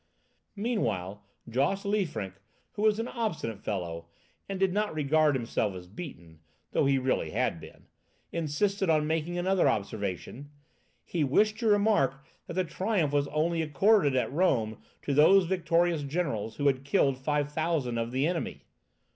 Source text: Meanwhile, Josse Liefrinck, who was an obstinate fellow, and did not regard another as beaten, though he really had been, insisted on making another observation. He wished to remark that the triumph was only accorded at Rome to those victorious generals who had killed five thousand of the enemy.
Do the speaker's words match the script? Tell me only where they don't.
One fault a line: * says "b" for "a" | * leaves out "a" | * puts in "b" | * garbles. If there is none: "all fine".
* says "himself" for "another"